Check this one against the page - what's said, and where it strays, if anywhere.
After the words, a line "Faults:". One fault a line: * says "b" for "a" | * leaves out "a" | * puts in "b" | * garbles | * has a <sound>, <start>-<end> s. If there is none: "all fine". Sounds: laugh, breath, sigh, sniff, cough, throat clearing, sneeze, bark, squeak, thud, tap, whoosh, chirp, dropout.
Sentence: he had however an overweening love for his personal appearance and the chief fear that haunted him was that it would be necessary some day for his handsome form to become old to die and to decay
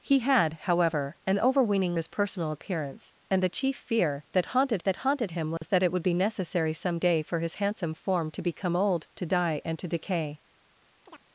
he had however an overweening his personal appearance and the chief fear that haunted that haunted him was that it would be necessary some day for his handsome form to become old to die and to decay
Faults:
* leaves out "love for"
* puts in "that haunted"
* has a dropout, 5.6-5.6 s
* has a chirp, 11.0-11.2 s